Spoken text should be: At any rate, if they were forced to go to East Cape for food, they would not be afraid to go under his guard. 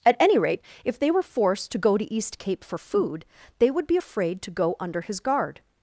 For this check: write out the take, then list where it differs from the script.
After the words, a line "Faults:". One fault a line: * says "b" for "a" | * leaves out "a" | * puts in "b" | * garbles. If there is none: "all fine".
At any rate, if they were forced to go to East Cape for food, they would be afraid to go under his guard.
Faults:
* leaves out "not"